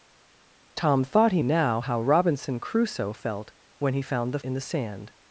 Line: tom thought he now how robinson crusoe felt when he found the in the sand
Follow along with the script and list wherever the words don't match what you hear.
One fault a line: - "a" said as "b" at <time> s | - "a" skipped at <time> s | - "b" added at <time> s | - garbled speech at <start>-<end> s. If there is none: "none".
none